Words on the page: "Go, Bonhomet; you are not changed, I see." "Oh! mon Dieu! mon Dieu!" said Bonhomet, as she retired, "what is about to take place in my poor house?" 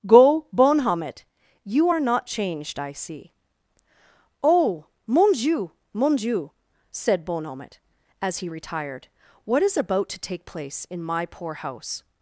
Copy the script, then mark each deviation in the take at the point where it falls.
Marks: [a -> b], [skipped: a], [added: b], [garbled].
"Go, Bonhomet; you are not changed, I see." "Oh! mon Dieu! mon Dieu!" said Bonhomet, as [she -> he] retired, "what is about to take place in my poor house?"